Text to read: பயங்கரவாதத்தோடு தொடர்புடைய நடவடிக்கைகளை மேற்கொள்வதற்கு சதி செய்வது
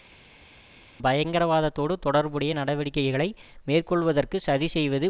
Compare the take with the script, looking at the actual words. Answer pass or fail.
pass